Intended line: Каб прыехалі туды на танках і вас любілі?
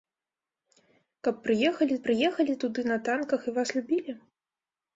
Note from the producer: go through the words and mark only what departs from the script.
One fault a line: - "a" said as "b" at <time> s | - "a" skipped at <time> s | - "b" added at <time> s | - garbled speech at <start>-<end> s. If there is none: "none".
- "прыехалі" added at 2.0 s